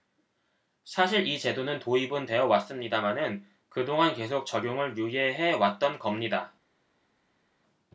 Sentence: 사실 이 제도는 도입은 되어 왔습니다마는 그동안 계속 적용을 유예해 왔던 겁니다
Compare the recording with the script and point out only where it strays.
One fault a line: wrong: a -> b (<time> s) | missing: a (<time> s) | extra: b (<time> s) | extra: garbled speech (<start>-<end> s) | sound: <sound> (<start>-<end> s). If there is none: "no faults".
no faults